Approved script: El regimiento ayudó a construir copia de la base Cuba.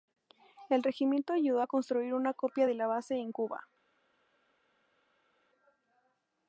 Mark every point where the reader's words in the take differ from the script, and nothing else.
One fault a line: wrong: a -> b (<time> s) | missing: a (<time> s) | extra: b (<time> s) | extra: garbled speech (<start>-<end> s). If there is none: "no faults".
extra: una (2.1 s)
extra: en (3.1 s)